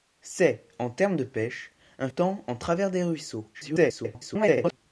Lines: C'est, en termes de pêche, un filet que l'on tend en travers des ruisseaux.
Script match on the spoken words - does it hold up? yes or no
no